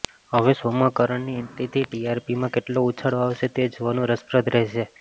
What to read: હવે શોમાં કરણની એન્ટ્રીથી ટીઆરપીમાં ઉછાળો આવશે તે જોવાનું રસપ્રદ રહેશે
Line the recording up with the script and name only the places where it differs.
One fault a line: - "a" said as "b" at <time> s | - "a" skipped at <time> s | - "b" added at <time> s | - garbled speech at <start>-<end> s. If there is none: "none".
- "કેટલો" added at 2.5 s